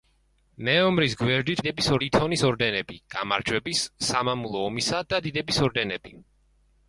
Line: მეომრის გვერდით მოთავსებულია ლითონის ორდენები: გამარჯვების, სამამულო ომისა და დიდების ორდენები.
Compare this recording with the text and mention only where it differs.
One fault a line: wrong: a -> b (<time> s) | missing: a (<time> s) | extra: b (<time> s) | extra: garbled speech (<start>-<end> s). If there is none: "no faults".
wrong: მოთავსებულია -> დიდების (1.6 s)